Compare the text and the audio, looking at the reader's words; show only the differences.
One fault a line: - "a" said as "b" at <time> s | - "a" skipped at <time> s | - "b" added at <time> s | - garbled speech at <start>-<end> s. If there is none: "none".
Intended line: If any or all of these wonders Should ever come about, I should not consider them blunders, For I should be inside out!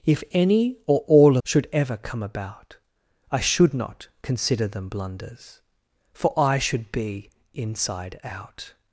- "of these wonders" skipped at 1.4 s